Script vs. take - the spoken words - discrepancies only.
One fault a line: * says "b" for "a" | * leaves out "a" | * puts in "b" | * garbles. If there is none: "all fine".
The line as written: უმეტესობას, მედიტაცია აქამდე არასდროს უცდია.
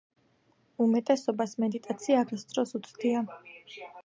* leaves out "აქამდე"